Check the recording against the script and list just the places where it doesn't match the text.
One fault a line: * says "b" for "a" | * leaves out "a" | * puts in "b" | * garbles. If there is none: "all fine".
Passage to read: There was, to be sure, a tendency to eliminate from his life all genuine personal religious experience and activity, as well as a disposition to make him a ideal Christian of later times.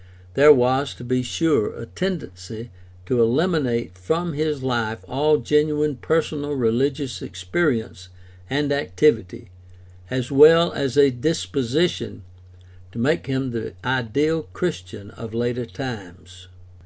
* says "the" for "a"